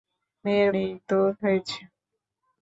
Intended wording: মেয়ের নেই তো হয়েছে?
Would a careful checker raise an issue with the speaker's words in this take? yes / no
no